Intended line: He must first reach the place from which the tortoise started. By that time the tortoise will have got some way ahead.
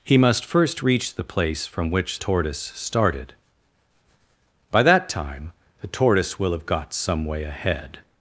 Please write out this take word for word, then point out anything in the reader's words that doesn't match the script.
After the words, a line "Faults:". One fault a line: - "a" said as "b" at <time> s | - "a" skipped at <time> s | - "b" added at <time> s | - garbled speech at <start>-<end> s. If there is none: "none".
He must first reach the place from which tortoise started. By that time the tortoise will have got some way ahead.
Faults:
- "the" skipped at 2.2 s